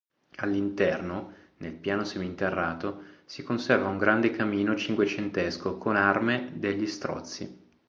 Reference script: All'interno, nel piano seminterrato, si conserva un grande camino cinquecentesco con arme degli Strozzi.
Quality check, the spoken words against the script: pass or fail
pass